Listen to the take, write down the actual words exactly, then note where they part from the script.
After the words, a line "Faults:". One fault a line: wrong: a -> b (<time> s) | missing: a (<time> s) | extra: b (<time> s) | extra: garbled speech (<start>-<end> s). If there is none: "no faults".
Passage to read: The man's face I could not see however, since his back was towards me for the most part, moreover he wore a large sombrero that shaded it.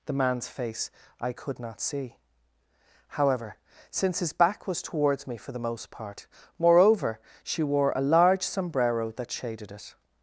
The man's face I could not see however, since his back was towards me for the most part, moreover she wore a large sombrero that shaded it.
Faults:
wrong: he -> she (7.4 s)